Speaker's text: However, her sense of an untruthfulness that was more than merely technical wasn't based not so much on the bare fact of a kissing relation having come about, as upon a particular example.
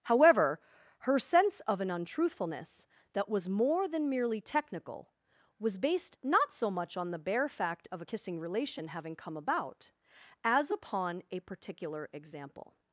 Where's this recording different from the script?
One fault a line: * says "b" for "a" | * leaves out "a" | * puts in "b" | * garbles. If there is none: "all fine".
* says "was" for "wasn't"